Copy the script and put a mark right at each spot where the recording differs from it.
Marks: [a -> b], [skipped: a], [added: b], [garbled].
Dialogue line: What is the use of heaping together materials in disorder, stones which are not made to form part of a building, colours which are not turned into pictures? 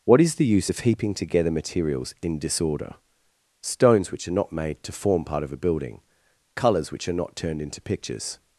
What is the use of heaping together materials in disorder, stones which are not made to form part of a building, colours which are not turned into pictures?